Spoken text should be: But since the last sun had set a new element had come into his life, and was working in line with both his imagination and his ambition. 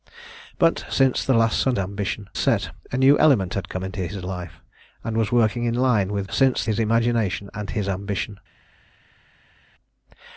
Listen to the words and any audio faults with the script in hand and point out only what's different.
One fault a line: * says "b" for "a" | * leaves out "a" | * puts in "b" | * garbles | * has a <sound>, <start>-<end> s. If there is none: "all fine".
* says "ambition" for "had"
* says "since" for "both"